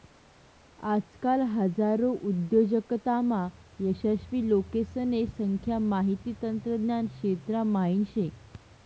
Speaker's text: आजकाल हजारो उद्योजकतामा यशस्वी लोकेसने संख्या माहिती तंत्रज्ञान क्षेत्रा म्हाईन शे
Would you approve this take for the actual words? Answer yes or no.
yes